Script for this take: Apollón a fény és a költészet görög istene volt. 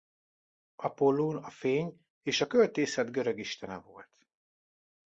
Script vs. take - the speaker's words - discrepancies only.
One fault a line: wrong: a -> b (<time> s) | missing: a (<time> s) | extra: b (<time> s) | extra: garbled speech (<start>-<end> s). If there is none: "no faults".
no faults